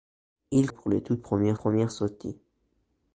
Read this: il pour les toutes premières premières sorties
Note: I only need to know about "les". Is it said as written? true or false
true